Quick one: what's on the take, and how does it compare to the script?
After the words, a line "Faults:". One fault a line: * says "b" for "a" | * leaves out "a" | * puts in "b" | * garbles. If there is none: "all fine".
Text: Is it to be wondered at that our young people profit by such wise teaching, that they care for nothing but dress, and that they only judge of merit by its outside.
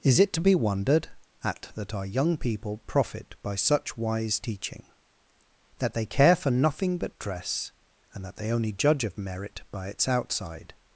Is it to be wondered at that our young people profit by such wise teaching, that they care for nothing but dress, and that they only judge of merit by its outside.
Faults:
all fine